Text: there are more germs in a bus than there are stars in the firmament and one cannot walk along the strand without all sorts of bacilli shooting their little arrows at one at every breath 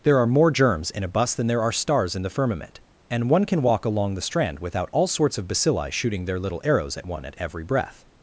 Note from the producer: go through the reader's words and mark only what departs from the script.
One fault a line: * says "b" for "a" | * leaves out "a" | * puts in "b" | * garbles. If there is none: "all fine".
* says "can" for "cannot"